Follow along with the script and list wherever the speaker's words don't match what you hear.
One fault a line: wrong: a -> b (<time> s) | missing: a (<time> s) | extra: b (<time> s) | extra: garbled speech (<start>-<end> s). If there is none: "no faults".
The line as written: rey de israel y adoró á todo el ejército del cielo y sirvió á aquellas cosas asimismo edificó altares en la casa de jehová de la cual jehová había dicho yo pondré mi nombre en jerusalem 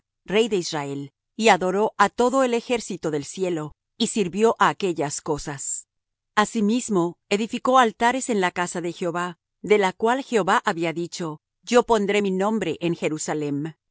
no faults